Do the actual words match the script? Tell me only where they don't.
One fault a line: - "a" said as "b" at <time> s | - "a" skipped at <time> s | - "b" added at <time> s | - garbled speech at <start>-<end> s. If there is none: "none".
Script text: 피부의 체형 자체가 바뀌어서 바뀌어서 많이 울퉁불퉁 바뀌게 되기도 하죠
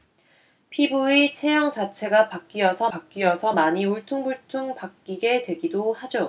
none